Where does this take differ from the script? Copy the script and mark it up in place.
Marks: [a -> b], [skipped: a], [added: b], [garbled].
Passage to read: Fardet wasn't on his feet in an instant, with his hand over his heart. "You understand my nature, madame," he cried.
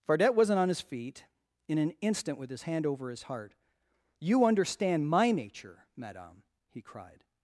Fardet wasn't on his feet in an instant, with his hand over his heart. "You understand my nature, madame," he cried.